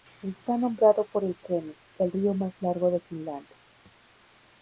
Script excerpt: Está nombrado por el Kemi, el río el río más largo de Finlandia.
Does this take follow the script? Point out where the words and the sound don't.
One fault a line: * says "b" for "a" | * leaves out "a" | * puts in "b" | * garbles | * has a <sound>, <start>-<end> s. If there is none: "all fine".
* leaves out "el río"